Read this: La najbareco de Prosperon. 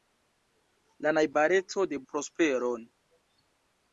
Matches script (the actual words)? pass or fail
pass